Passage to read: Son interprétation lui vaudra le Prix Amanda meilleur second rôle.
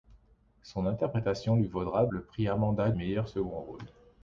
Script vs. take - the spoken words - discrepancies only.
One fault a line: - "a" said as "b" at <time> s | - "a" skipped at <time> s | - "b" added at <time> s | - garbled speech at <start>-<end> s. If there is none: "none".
none